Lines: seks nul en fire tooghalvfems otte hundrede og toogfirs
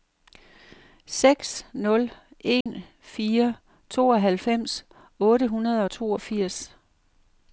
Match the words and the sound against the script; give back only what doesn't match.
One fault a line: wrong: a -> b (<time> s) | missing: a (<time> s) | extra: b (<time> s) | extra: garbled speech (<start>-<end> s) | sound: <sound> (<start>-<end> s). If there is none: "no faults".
sound: dropout (2.6-2.7 s)